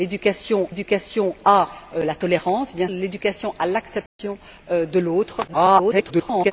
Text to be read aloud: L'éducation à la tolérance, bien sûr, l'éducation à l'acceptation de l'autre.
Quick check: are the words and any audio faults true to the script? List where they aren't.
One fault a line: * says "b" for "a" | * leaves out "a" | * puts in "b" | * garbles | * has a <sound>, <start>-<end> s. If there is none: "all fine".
* puts in "l'éducation"
* leaves out "sûr"
* has a dropout, 4.1-4.2 s
* garbles